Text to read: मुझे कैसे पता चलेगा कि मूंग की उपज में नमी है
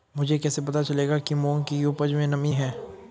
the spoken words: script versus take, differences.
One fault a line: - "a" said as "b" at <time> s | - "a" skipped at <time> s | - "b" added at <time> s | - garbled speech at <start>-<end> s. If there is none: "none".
none